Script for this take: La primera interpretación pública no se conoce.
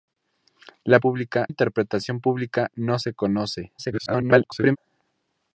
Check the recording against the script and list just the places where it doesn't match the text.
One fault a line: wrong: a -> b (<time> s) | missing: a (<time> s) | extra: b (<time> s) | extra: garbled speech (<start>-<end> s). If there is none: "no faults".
wrong: primera -> pública (1.0 s)
extra: garbled speech (3.8-4.8 s)